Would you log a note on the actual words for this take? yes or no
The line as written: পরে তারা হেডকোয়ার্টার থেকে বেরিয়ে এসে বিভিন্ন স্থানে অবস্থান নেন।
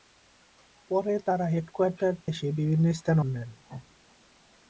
yes